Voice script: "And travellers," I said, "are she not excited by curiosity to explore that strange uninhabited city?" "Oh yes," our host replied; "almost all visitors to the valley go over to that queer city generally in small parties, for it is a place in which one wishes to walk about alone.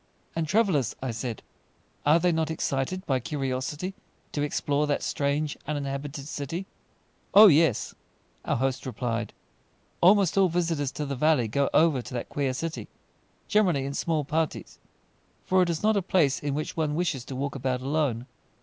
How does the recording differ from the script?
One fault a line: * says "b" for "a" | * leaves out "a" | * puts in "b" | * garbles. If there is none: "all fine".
* says "they" for "she"
* puts in "not"